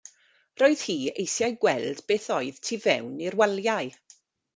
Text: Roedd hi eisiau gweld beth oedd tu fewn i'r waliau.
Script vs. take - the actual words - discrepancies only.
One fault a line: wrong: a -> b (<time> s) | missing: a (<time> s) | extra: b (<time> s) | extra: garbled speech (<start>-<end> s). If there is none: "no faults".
no faults